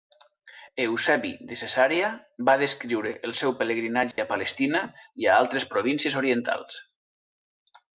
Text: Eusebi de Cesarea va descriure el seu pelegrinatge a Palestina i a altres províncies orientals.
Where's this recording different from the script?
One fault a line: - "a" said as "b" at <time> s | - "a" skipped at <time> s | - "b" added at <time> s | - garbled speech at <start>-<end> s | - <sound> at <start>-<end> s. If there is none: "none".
- dropout at 4.1-4.2 s